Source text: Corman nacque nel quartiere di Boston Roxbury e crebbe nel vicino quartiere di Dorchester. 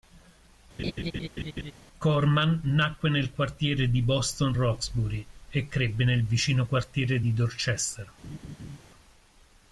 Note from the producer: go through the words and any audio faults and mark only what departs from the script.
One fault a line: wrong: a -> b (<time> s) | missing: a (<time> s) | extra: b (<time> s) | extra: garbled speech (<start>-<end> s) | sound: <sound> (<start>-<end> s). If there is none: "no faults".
sound: laugh (0.8-1.7 s)
sound: laugh (8.2-8.8 s)